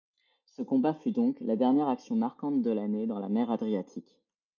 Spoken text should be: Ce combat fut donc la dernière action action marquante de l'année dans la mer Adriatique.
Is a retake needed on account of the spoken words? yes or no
yes